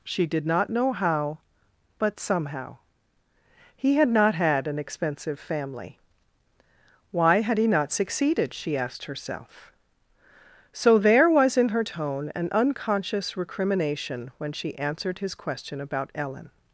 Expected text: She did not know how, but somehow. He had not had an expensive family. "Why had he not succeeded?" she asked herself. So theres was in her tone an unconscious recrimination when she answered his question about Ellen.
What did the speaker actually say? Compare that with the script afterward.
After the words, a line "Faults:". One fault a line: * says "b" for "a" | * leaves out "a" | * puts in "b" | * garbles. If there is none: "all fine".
She did not know how, but somehow. He had not had an expensive family. "Why had he not succeeded?" she asked herself. So there was in her tone an unconscious recrimination when she answered his question about Ellen.
Faults:
* says "there" for "theres"